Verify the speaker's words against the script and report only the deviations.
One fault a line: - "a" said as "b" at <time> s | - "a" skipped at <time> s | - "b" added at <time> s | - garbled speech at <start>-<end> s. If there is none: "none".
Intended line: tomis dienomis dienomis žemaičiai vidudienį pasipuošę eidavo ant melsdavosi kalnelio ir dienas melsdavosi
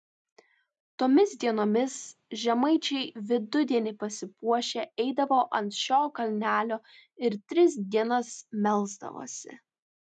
- "dienomis" skipped at 2.0 s
- "melsdavosi" said as "šio" at 5.8 s
- "tris" added at 7.5 s